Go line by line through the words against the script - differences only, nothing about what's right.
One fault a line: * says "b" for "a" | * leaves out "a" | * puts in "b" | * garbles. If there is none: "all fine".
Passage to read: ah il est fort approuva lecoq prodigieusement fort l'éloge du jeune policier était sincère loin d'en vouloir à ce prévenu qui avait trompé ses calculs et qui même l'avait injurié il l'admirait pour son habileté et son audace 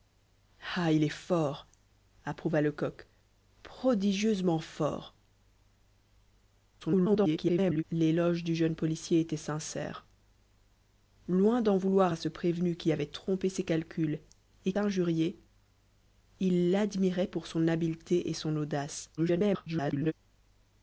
* garbles
* leaves out "qui même l'avait"
* garbles